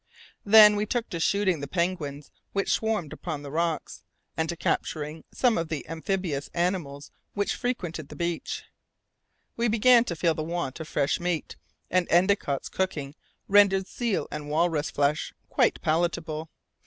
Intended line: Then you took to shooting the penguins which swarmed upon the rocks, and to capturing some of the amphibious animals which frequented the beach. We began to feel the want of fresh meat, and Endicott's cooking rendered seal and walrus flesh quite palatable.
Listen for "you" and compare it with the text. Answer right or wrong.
wrong